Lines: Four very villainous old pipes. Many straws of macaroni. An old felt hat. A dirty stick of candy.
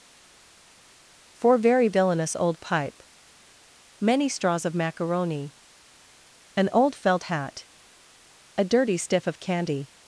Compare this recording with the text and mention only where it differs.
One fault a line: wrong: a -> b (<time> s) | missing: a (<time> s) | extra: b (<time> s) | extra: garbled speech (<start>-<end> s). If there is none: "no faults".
wrong: pipes -> pipe (2.6 s)
wrong: stick -> stiff (9.0 s)